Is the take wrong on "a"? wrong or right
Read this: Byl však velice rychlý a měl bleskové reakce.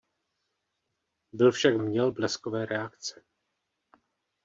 wrong